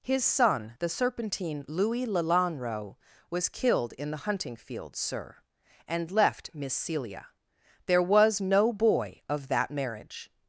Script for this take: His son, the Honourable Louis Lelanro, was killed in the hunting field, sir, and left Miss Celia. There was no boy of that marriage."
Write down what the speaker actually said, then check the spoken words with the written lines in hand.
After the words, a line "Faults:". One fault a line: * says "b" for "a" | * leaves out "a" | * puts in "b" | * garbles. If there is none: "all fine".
His son, the Serpentine Louis Lelanro, was killed in the hunting field, sir, and left Miss Celia. There was no boy of that marriage."
Faults:
* says "Serpentine" for "Honourable"